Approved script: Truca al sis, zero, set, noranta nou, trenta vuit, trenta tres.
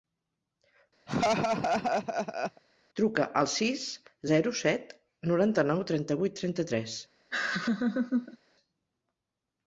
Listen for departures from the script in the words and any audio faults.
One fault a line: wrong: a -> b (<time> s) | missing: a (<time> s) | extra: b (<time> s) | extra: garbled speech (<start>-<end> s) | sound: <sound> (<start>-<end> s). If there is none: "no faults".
sound: laugh (1.1-2.6 s)
sound: laugh (7.3-8.4 s)